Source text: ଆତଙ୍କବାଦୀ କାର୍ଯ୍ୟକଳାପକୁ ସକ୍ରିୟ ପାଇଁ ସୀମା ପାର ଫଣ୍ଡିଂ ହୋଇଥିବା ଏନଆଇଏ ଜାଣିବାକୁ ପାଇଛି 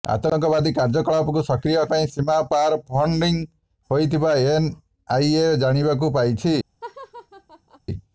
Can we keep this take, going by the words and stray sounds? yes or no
no